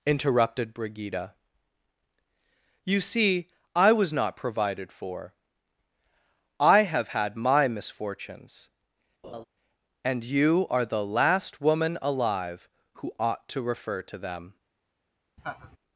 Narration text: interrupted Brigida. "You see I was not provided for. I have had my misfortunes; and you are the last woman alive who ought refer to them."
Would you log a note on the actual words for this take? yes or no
yes